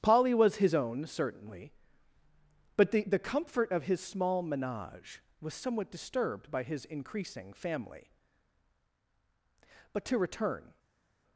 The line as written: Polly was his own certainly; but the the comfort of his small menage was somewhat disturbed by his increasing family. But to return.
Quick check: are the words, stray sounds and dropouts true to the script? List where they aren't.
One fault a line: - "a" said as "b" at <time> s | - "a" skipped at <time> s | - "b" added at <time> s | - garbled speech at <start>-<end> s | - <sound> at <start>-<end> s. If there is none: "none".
none